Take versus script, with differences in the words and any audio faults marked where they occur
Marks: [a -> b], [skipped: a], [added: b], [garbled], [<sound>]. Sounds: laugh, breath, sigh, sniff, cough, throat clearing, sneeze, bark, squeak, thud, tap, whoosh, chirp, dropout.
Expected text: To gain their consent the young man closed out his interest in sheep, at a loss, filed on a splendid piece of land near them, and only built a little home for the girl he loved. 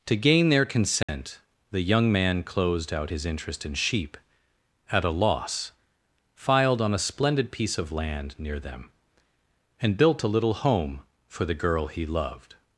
To gain their consent [dropout] the young man closed out his interest in sheep, at a loss, filed on a splendid piece of land near them, and [skipped: only] built a little home for the girl he loved.